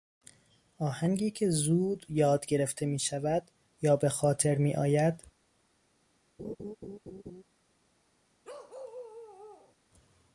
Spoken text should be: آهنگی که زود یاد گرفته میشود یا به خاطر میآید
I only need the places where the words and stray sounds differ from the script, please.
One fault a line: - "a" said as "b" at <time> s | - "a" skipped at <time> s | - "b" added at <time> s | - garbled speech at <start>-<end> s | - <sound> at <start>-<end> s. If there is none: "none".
- laugh at 6.4-7.4 s
- bark at 8.4-9.8 s